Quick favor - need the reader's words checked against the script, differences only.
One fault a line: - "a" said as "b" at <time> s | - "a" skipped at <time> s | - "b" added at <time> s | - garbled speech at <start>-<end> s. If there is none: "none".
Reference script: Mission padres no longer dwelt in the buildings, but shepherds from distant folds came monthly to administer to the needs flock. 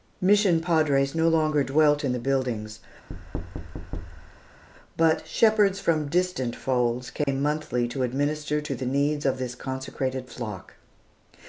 - "of this consecrated" added at 9.3 s